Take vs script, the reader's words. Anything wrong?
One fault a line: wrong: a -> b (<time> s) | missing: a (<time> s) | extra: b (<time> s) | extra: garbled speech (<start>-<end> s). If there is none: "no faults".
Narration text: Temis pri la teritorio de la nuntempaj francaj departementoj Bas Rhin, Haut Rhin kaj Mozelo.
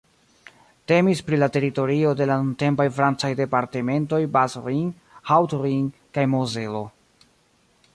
no faults